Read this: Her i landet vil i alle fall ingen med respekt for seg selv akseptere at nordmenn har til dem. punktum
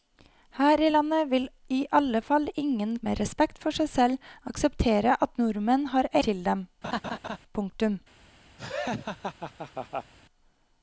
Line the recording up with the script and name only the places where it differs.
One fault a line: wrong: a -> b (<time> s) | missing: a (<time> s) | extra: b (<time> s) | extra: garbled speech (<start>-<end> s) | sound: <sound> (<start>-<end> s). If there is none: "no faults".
sound: laugh (6.8-7.4 s)
sound: laugh (8.6-10.1 s)